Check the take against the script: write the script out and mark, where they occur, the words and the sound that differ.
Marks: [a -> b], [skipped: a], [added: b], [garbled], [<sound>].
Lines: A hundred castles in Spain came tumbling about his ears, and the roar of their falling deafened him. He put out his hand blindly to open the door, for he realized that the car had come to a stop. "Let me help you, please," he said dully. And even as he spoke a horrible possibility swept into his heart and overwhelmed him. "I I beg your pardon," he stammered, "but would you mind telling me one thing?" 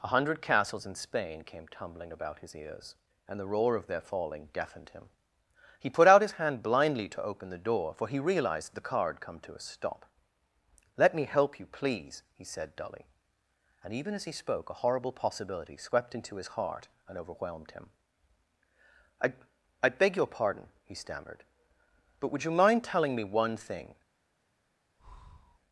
A hundred castles in Spain came tumbling about his ears, and the roar of their falling deafened him. He put out his hand blindly to open the door, for he realized [skipped: that] the car had come to a stop. "Let me help you, please," he said dully. And even as he spoke a horrible possibility swept into his heart and overwhelmed him. "I I beg your pardon," he stammered, "but would you mind telling me one thing?" [breath]